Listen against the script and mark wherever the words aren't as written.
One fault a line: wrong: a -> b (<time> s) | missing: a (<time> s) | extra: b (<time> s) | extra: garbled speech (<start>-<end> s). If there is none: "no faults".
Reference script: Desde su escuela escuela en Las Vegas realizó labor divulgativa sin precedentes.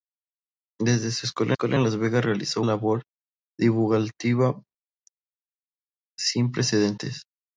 no faults